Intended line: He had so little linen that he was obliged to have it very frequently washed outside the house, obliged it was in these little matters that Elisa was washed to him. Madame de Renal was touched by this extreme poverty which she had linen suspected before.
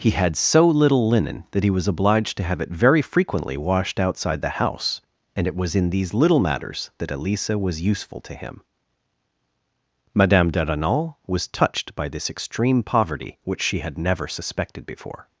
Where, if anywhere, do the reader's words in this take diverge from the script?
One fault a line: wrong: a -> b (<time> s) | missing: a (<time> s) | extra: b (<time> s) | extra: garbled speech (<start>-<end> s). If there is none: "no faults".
wrong: obliged -> and (5.3 s)
wrong: washed -> useful (7.8 s)
wrong: linen -> never (14.0 s)